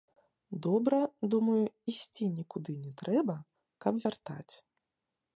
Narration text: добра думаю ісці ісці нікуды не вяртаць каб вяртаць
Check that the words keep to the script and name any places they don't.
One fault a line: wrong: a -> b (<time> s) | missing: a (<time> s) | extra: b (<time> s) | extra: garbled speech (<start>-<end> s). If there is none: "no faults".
missing: ісці (2.2 s)
wrong: вяртаць -> трэба (3.0 s)